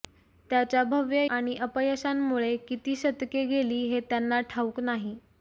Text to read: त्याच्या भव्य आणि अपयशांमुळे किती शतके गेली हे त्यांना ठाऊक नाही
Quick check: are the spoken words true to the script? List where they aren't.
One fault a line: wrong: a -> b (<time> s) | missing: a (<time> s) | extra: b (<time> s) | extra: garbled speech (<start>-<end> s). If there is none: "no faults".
no faults